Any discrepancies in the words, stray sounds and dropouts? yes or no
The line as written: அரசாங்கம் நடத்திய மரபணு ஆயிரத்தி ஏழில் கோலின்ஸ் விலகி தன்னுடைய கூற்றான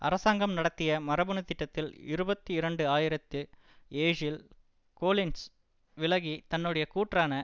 yes